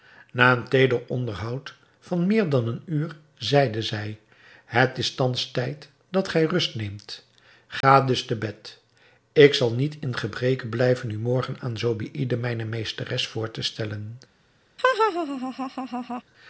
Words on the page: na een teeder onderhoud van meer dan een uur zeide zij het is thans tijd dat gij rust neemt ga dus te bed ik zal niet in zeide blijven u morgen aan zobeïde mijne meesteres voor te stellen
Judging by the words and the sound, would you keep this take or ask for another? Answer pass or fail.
fail